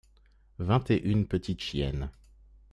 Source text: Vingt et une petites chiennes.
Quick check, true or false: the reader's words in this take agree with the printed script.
true